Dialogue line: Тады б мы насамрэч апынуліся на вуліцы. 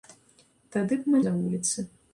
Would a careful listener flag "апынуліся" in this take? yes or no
yes